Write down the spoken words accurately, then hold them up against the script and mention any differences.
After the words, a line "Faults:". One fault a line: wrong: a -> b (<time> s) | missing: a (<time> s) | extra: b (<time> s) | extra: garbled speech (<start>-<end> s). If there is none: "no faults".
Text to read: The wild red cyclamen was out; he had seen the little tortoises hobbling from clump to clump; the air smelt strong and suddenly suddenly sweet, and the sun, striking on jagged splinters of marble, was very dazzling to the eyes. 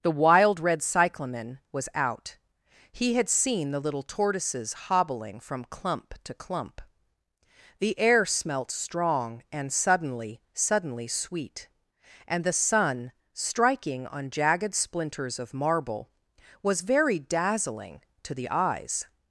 The wild red cyclamen was out; he had seen the little tortoises hobbling from clump to clump; the air smelt strong and suddenly suddenly sweet, and the sun, striking on jagged splinters of marble, was very dazzling to the eyes.
Faults:
no faults